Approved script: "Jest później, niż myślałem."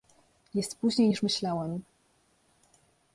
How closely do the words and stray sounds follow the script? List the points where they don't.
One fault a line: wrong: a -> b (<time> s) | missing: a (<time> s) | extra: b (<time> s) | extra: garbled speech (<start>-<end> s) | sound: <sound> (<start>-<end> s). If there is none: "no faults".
no faults